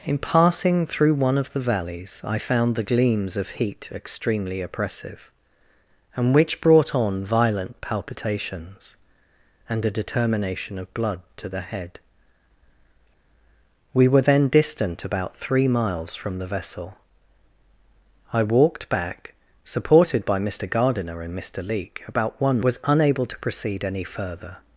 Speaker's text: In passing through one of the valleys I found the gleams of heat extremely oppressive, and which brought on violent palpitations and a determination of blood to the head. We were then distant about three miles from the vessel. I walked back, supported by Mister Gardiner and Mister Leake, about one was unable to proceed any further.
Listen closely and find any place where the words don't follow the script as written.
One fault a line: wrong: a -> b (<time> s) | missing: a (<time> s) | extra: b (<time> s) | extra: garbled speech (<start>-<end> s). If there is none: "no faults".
no faults